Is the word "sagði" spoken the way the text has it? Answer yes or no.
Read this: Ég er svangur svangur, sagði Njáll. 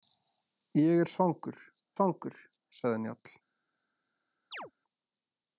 yes